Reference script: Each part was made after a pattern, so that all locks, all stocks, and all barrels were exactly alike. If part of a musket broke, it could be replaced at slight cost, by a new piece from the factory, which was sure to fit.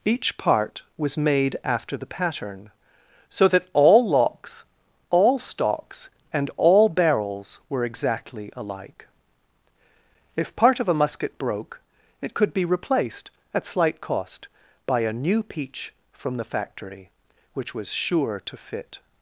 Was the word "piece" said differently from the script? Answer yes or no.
yes